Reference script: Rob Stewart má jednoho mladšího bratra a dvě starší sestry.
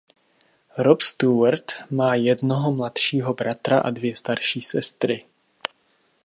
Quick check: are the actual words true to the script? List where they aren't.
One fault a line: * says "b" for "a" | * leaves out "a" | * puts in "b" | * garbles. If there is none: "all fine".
all fine